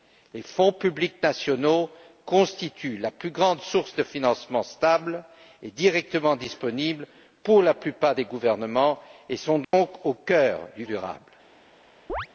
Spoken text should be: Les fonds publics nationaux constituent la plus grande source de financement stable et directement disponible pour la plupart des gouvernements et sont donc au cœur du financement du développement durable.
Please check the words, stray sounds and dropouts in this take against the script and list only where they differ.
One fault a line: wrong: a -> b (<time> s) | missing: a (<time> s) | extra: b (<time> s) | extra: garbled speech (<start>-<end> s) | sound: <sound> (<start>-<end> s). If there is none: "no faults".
sound: dropout (9.6-9.7 s)
missing: financement du développement (10.8 s)
sound: chirp (12.1-12.3 s)